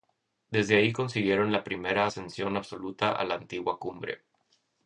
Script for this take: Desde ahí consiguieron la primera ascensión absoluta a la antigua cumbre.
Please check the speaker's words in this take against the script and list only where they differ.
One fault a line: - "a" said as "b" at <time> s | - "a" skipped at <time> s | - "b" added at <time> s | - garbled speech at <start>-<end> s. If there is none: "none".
none